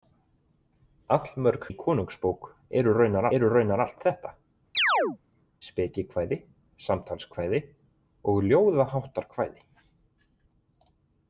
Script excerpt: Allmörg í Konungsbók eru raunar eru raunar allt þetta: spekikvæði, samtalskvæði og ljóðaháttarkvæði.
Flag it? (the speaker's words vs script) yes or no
no